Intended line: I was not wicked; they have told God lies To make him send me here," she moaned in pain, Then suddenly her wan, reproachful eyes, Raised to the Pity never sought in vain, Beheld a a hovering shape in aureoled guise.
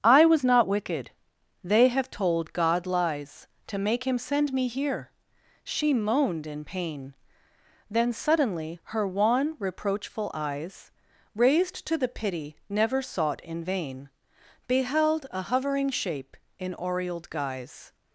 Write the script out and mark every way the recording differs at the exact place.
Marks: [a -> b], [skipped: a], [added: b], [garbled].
I was not wicked; they have told God lies To make him send me here," she moaned in pain, Then suddenly her wan, reproachful eyes, Raised to the Pity never sought in vain, Beheld a [skipped: a] hovering shape in aureoled guise.